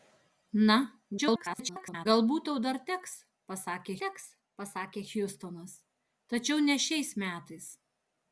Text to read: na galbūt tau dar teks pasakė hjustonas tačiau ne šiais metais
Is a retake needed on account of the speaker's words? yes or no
yes